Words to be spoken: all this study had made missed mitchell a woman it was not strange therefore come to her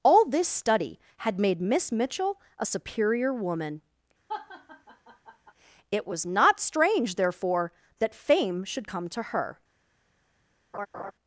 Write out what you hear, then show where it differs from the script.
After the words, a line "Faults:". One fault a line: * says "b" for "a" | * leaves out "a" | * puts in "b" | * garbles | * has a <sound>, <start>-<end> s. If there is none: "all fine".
all this study had made miss mitchell a superior woman it was not strange therefore that fame should come to her
Faults:
* says "miss" for "missed"
* puts in "superior"
* has a laugh, 4.3-5.5 s
* puts in "that fame should"
* has a laugh, 10.7-11.1 s